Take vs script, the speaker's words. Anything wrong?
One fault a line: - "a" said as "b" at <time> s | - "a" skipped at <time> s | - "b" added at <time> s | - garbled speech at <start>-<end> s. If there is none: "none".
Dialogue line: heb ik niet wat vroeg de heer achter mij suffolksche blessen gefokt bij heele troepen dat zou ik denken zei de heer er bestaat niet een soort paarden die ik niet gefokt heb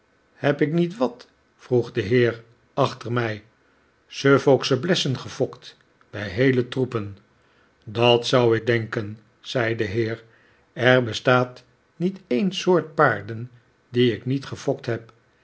none